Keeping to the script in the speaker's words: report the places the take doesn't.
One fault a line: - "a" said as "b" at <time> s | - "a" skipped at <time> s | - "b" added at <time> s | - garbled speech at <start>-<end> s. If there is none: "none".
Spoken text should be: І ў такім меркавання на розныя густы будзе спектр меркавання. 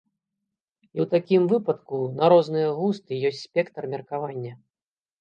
- "меркавання" said as "выпадку" at 1.5 s
- "будзе" said as "ёсць" at 3.3 s